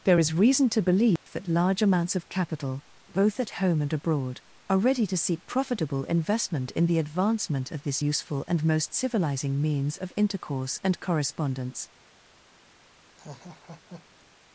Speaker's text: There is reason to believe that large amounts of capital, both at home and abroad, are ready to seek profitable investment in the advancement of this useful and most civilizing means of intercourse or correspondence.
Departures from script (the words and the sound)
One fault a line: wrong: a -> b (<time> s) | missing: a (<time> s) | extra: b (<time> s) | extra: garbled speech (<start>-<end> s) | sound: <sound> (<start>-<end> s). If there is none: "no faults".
sound: dropout (1.2-1.3 s)
wrong: or -> and (10.8 s)
sound: laugh (13.2-14.2 s)